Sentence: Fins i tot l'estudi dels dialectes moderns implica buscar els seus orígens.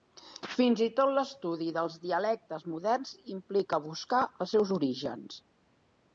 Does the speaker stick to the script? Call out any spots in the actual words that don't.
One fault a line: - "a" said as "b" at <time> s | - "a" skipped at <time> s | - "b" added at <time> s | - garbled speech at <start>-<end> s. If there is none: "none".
none